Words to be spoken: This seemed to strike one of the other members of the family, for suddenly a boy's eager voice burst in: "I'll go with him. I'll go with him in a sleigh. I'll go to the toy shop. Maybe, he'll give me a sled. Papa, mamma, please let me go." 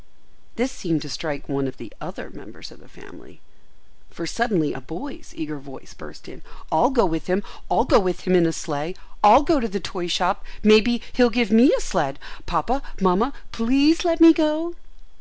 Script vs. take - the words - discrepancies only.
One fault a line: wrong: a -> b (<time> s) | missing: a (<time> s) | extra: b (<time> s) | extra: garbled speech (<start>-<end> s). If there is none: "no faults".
no faults